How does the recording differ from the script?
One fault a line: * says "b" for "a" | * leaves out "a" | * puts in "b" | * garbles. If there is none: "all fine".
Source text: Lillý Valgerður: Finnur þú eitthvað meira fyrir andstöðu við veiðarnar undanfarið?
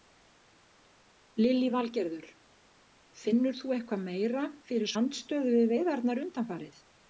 all fine